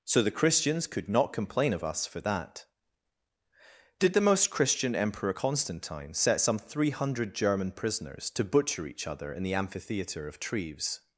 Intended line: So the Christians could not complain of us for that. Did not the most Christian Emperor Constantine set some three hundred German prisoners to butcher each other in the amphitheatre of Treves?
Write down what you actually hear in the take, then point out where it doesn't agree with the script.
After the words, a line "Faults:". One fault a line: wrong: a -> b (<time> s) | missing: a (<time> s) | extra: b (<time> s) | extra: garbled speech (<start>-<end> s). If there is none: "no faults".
So the Christians could not complain of us for that. Did the most Christian Emperor Constantine set some three hundred German prisoners to butcher each other in the amphitheatre of Treves?
Faults:
missing: not (4.1 s)